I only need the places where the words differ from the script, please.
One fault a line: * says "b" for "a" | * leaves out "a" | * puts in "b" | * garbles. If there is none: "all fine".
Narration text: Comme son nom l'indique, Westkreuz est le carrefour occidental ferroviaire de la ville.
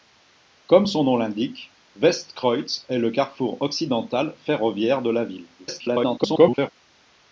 * garbles